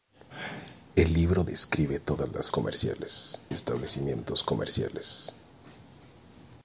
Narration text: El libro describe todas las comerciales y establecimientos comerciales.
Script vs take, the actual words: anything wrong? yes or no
no